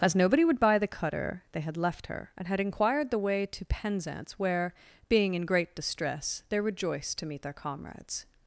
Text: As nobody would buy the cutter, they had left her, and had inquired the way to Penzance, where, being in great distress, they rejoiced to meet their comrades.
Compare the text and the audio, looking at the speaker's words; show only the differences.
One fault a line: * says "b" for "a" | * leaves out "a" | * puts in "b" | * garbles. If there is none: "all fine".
all fine